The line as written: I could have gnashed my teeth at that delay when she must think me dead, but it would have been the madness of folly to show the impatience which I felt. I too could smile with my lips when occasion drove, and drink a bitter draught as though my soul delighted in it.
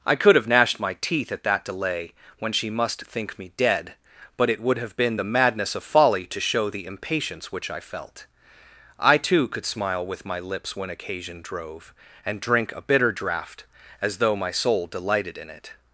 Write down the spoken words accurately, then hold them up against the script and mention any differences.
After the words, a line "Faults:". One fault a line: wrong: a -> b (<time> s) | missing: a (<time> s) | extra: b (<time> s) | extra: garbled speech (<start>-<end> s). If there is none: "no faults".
I could have gnashed my teeth at that delay when she must think me dead, but it would have been the madness of folly to show the impatience which I felt. I too could smile with my lips when occasion drove, and drink a bitter draught as though my soul delighted in it.
Faults:
no faults